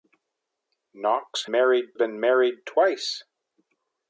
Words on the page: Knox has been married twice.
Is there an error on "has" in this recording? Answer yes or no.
yes